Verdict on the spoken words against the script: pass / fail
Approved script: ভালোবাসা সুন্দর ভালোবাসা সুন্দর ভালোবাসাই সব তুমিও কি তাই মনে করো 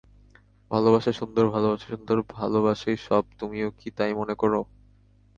pass